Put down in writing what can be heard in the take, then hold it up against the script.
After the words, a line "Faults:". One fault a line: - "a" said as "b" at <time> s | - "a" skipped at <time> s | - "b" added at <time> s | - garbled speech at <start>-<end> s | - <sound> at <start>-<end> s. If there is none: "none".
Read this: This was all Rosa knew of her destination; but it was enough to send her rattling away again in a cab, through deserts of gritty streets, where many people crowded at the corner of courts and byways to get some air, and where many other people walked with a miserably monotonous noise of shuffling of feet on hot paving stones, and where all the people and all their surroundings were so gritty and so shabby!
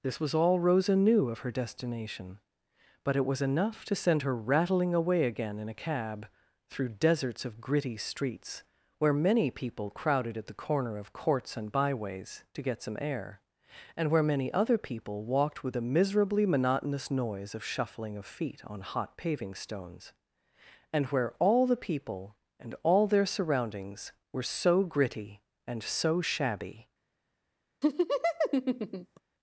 This was all Rosa knew of her destination; but it was enough to send her rattling away again in a cab, through deserts of gritty streets, where many people crowded at the corner of courts and byways to get some air, and where many other people walked with a miserably monotonous noise of shuffling of feet on hot paving stones, and where all the people and all their surroundings were so gritty and so shabby!
Faults:
- laugh at 27.8-29.2 s